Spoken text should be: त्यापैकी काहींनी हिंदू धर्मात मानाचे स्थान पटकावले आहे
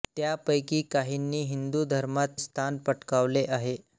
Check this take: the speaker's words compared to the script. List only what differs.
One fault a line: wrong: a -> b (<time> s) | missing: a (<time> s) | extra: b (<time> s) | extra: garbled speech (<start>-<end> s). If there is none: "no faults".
missing: मानाचे (2.4 s)